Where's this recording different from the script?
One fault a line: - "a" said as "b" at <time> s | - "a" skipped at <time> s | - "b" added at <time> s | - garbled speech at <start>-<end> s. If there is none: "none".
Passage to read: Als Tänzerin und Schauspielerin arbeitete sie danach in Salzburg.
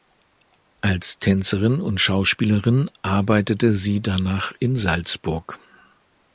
none